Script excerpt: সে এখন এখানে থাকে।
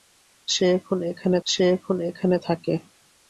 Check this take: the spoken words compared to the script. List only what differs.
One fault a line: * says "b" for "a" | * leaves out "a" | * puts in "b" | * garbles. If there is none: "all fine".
* puts in "সে এখন এখানে"